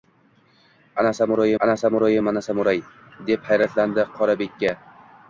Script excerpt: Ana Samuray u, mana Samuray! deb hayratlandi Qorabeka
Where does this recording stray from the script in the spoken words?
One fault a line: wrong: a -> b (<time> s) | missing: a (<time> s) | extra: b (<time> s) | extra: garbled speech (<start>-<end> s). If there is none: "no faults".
extra: ana Samuray (1.6 s)